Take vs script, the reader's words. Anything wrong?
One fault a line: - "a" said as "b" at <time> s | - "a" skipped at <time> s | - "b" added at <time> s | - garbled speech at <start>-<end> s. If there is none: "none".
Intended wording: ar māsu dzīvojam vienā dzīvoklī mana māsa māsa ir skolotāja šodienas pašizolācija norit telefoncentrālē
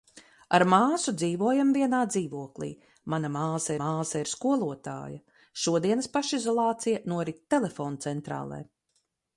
none